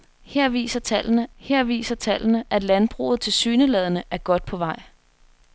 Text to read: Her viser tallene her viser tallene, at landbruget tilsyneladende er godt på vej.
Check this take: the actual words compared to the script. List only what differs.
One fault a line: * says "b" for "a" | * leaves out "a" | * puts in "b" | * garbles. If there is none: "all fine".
all fine